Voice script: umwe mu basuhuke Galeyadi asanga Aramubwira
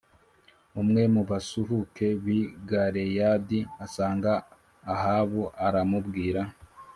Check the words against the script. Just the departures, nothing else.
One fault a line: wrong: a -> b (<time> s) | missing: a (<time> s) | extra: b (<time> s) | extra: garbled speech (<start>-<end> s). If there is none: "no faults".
extra: b'i (2.2 s)
extra: Ahabu (4.9 s)